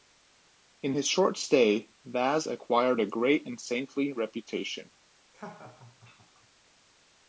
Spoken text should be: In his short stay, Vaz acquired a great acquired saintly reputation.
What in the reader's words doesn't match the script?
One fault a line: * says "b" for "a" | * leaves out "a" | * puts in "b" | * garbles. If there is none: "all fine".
* says "and" for "acquired"